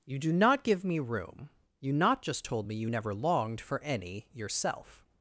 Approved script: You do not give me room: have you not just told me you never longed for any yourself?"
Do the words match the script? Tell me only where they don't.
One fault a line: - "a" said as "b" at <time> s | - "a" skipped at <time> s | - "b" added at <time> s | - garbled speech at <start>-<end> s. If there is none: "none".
- "have" skipped at 1.5 s